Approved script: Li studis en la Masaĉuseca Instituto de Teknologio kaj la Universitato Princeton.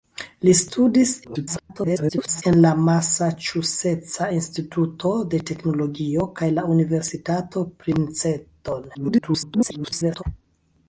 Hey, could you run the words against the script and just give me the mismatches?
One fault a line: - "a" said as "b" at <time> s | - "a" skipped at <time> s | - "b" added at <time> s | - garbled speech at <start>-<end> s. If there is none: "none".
- garbled speech at 1.2-2.4 s
- garbled speech at 8.9-10.2 s